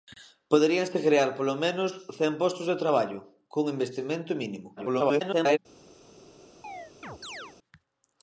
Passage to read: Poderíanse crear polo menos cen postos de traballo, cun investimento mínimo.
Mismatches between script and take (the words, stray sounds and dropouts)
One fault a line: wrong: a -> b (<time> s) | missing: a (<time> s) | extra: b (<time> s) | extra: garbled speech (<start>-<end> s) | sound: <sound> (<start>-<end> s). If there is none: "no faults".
extra: garbled speech (4.8-5.6 s)
sound: chirp (6.6-7.6 s)